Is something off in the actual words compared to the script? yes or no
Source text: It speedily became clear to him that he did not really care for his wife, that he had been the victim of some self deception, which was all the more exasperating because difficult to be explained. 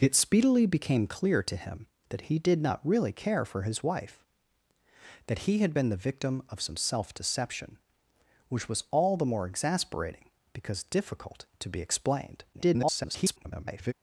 yes